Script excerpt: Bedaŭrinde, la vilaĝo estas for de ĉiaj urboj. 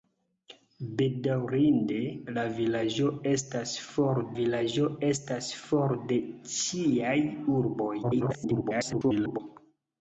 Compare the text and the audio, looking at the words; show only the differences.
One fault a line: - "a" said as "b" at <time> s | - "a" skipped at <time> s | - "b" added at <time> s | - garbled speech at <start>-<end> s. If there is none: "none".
- "vilaĝo estas for" added at 4.4 s
- garbled speech at 8.0-9.4 s